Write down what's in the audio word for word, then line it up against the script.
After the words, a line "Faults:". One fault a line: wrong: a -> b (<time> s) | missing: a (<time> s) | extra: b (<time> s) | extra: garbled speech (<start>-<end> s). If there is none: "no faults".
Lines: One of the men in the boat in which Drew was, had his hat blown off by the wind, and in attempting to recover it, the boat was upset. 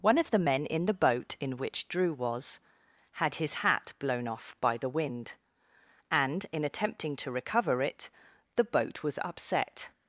One of the men in the boat in which Drew was, had his hat blown off by the wind, and in attempting to recover it, the boat was upset.
Faults:
no faults